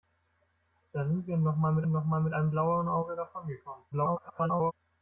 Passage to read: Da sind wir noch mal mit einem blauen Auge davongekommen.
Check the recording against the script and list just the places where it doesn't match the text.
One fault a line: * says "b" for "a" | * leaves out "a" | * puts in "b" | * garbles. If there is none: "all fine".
* puts in "noch mal mit"
* garbles